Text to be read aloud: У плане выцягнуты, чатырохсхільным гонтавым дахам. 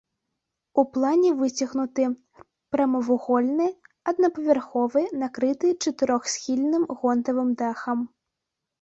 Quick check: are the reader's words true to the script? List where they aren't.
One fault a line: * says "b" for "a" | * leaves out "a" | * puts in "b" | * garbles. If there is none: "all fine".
* puts in "прамавугольны аднапавярховы накрыты"